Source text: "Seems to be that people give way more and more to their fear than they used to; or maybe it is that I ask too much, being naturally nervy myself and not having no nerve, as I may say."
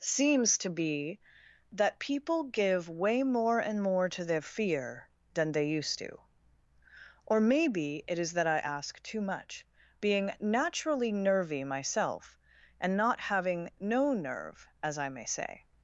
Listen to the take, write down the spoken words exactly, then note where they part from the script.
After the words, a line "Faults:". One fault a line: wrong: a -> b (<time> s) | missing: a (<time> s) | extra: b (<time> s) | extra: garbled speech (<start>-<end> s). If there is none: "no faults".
"Seems to be that people give way more and more to their fear than they used to; or maybe it is that I ask too much, being naturally nervy myself and not having no nerve, as I may say."
Faults:
no faults